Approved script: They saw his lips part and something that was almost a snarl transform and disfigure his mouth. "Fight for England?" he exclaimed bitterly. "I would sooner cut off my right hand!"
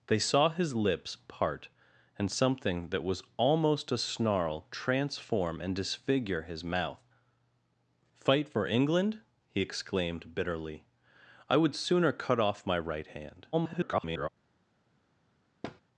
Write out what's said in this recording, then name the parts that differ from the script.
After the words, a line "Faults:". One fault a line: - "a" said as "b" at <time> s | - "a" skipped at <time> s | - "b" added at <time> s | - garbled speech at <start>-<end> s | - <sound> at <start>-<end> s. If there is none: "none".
They saw his lips part and something that was almost a snarl transform and disfigure his mouth. "Fight for England?" he exclaimed bitterly. "I would sooner cut off my right hand!" [garbled]
Faults:
- garbled speech at 13.5-14.3 s
- thud at 15.6-15.8 s